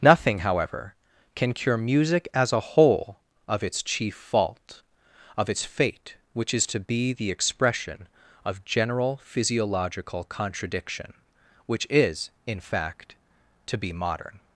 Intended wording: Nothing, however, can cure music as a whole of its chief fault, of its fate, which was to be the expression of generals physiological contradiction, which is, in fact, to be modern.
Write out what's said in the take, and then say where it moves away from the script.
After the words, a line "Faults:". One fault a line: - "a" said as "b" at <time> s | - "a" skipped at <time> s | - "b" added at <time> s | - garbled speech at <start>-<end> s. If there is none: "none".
Nothing, however, can cure music as a whole of its chief fault, of its fate, which is to be the expression of general physiological contradiction, which is, in fact, to be modern.
Faults:
- "was" said as "is" at 6.5 s
- "generals" said as "general" at 8.7 s